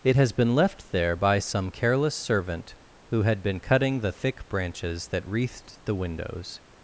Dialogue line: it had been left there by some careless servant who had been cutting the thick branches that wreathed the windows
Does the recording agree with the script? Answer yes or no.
no